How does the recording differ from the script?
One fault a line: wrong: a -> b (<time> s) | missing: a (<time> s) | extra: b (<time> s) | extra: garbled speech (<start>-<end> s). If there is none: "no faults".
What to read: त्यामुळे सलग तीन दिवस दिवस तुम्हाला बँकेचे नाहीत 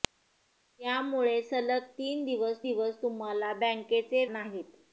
no faults